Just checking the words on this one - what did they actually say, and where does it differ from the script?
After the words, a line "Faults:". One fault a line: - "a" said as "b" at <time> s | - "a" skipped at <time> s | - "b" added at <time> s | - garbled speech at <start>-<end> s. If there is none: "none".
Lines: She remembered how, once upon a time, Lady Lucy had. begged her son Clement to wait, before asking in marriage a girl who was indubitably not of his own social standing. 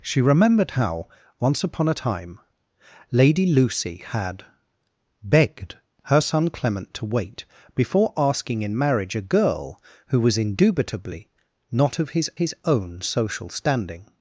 She remembered how, once upon a time, Lady Lucy had. begged her son Clement to wait, before asking in marriage a girl who was indubitably not of his his own social standing.
Faults:
- "his" added at 12.4 s